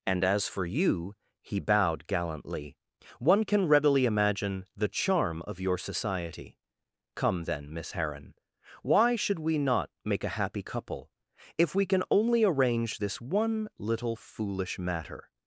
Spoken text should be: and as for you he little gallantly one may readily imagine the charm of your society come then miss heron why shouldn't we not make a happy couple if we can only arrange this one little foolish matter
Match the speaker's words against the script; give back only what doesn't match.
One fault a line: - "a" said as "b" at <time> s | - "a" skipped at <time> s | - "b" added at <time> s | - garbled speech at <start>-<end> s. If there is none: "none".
- "little" said as "bowed" at 1.6 s
- "may" said as "can" at 3.4 s
- "shouldn't" said as "should" at 9.2 s